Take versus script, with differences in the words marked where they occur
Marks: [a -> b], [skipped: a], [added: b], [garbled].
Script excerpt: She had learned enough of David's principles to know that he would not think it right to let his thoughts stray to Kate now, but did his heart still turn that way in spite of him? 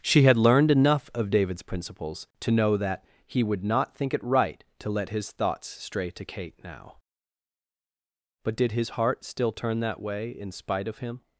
She had learned enough of David's principles to know that he would not think it right to let his thoughts stray to Kate now, but did his heart still turn that way in spite of him?